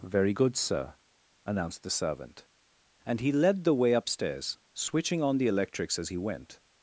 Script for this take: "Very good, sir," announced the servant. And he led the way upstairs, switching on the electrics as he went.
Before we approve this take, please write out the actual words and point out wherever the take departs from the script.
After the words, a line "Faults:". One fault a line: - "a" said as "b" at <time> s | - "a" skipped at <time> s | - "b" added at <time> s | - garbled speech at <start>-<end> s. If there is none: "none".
"Very good, sir," announced the servant. And he led the way upstairs, switching on the electrics as he went.
Faults:
none